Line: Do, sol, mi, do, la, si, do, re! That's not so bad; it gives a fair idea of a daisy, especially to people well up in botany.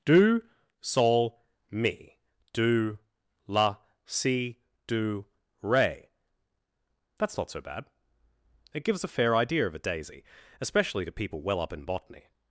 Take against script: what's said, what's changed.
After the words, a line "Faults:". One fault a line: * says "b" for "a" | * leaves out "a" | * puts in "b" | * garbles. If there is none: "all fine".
Do, sol, mi, do, la, si, do, re! That's not so bad; it gives a fair idea of a daisy, especially to people well up in botany.
Faults:
all fine